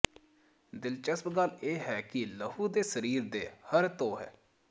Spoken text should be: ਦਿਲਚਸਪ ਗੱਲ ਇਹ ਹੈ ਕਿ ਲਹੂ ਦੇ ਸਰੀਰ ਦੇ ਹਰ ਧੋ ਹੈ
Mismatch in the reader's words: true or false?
false